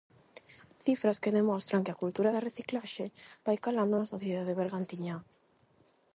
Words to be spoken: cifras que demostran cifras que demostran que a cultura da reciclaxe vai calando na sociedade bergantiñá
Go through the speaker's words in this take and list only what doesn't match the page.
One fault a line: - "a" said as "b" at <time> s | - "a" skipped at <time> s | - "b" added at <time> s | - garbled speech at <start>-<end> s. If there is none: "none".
- "cifras que demostran" skipped at 1.9 s